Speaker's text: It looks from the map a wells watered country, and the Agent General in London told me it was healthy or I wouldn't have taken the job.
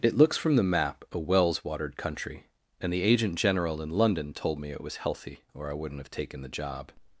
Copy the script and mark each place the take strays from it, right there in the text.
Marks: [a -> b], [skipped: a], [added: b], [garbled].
It looks from the map a wells watered country, and the Agent General in London told me it was healthy or I wouldn't have taken the job.